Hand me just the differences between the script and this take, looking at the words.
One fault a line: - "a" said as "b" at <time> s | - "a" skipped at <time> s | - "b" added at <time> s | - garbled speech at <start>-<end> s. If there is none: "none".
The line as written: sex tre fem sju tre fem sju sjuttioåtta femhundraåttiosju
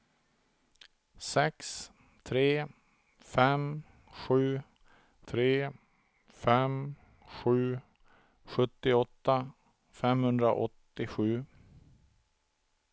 none